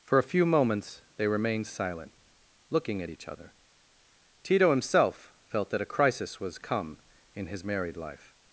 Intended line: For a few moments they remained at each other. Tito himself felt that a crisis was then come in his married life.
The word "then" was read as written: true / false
false